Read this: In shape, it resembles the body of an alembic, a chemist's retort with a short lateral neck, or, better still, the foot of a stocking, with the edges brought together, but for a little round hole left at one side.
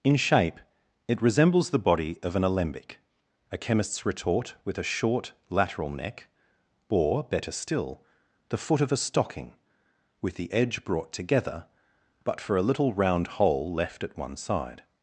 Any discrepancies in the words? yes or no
yes